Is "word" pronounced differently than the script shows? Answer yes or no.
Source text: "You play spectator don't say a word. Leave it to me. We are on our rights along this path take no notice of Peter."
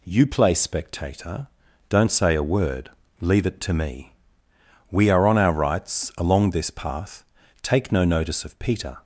no